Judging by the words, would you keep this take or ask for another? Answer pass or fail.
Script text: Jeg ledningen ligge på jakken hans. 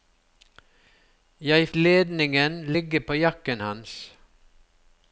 pass